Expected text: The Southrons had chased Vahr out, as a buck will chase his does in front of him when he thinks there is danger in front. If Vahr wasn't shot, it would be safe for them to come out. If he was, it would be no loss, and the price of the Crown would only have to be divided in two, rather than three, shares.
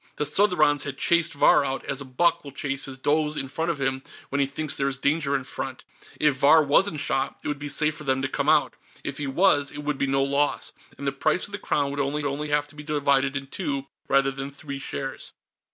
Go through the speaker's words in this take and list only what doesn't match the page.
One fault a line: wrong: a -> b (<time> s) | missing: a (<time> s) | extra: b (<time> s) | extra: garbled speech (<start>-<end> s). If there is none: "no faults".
extra: only (12.2 s)